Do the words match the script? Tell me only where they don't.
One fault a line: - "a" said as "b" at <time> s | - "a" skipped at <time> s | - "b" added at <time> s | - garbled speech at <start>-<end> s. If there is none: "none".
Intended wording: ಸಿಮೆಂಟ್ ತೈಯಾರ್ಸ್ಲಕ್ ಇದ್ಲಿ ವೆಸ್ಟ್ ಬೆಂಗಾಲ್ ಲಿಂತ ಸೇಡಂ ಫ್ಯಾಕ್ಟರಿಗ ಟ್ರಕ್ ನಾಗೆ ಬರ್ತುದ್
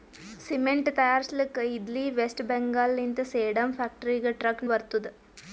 - "ನಾಗೆ" skipped at 4.7 s